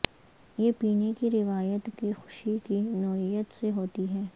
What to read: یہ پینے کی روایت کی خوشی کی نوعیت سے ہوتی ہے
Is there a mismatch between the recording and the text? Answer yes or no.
no